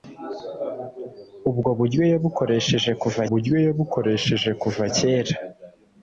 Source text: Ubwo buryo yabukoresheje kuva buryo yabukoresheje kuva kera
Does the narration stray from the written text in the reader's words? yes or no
no